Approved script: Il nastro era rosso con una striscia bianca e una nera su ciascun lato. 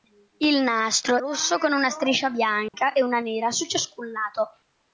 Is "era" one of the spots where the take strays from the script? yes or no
yes